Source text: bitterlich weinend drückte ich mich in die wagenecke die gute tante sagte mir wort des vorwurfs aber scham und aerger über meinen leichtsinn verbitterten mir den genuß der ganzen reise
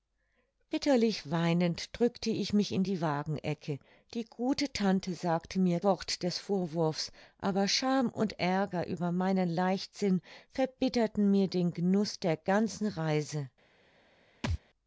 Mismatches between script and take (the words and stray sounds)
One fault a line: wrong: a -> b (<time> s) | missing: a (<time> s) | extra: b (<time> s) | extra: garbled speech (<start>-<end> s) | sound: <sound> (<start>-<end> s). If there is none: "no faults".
sound: thud (14.4-14.6 s)